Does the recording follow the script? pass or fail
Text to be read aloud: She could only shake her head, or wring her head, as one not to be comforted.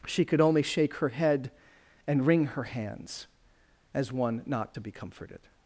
fail